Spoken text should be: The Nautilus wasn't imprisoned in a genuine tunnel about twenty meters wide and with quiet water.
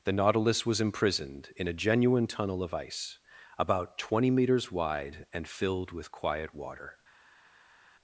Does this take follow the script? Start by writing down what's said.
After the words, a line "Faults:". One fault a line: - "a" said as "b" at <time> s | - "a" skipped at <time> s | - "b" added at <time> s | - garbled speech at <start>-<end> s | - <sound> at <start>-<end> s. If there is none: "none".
The Nautilus was imprisoned in a genuine tunnel of ice about twenty meters wide and filled with quiet water.
Faults:
- "wasn't" said as "was" at 0.7 s
- "of ice" added at 2.6 s
- "filled" added at 5.4 s